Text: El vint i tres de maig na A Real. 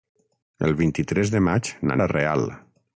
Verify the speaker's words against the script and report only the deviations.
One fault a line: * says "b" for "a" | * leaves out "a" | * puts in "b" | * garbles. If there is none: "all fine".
all fine